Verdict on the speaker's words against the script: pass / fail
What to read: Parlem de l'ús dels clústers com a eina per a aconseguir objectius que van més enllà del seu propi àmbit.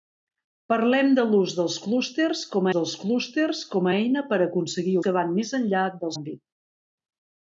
fail